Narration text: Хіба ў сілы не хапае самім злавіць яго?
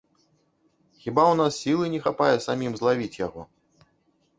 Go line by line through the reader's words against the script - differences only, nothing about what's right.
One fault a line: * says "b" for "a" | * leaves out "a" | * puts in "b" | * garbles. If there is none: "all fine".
* puts in "нас"